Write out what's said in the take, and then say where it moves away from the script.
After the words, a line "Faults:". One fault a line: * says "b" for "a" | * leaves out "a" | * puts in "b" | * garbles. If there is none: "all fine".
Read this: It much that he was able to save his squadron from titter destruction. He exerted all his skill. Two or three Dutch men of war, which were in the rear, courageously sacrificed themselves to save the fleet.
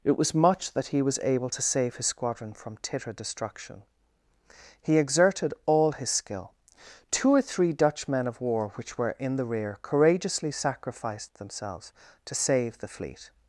It was much that he was able to save his squadron from titter destruction. He exerted all his skill. Two or three Dutch men of war, which were in the rear, courageously sacrificed themselves to save the fleet.
Faults:
* puts in "was"